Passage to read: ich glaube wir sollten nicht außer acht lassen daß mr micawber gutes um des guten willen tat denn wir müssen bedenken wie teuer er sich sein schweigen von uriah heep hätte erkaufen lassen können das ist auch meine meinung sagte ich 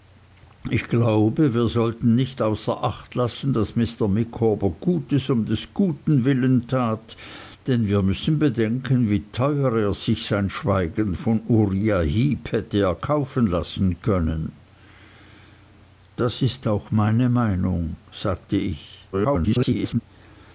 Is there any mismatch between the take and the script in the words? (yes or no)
yes